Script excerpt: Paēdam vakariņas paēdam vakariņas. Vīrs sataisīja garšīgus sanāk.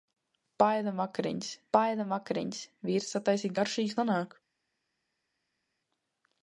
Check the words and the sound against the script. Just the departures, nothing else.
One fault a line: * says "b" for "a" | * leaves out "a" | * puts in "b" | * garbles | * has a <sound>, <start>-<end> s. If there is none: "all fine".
all fine